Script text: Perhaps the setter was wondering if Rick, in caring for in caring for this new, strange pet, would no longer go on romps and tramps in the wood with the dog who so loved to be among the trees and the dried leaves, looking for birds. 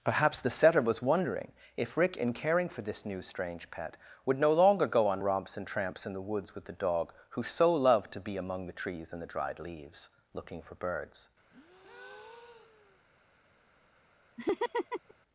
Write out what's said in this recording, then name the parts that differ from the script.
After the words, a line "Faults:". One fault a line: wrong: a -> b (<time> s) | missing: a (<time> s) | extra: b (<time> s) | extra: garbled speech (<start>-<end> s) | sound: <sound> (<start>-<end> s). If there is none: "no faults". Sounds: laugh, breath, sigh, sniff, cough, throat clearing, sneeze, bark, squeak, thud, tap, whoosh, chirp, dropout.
Perhaps the setter was wondering if Rick, in caring for this new, strange pet, would no longer go on romps and tramps in the woods with the dog who so loved to be among the trees and the dried leaves, looking for birds.
Faults:
missing: in caring for (2.8 s)
wrong: wood -> woods (6.2 s)
sound: breath (11.5-13.0 s)
sound: laugh (14.4-15.1 s)